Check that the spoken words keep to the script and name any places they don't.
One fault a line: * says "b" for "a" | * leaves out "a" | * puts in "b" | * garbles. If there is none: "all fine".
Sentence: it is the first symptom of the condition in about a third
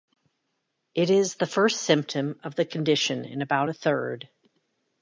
all fine